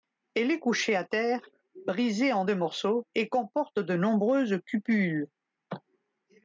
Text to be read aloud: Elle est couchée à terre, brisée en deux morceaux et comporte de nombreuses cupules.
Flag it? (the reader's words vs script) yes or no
no